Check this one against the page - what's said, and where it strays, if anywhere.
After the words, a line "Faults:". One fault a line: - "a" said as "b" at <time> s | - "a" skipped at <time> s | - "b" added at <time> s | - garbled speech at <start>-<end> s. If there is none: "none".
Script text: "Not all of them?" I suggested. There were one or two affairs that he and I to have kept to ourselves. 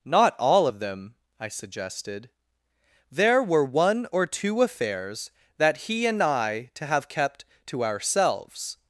"Not all of them?" I suggested. There were one or two affairs that he and I to have kept to ourselves.
Faults:
none